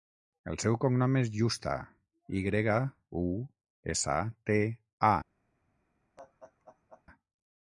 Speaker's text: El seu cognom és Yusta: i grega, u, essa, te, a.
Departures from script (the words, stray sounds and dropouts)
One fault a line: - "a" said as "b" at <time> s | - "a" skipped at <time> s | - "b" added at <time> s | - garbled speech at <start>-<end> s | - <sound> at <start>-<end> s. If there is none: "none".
- laugh at 6.2-7.0 s